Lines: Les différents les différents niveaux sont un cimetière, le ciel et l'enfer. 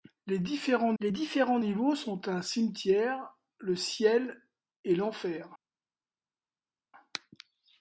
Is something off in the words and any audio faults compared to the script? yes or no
no